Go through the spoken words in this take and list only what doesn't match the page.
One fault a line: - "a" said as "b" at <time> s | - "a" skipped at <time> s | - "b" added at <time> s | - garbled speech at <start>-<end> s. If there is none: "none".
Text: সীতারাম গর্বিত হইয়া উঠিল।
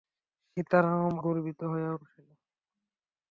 none